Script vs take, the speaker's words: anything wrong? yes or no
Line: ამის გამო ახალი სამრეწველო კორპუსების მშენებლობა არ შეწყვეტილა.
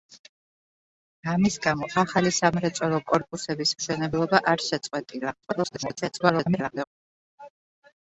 yes